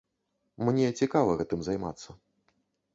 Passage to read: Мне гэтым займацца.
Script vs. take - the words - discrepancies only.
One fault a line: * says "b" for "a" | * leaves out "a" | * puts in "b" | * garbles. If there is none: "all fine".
* puts in "цікава"